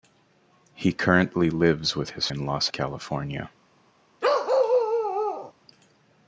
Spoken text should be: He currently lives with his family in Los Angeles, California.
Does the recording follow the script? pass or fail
fail